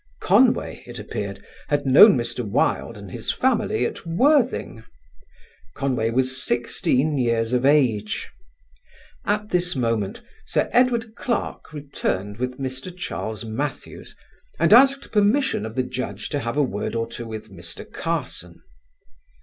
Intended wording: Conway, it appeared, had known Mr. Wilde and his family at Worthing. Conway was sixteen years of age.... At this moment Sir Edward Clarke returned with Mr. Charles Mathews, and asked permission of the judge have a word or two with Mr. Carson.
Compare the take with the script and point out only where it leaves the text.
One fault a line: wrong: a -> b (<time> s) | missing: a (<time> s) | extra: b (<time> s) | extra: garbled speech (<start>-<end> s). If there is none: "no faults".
extra: to (16.3 s)